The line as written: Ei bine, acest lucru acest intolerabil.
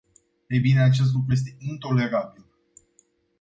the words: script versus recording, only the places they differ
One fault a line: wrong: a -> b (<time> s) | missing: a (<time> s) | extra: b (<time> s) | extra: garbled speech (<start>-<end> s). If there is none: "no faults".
wrong: acest -> este (1.3 s)